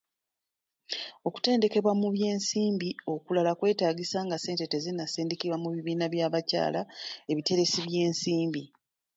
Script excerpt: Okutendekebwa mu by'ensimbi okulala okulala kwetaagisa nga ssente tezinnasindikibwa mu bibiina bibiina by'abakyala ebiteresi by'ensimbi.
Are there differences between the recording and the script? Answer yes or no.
yes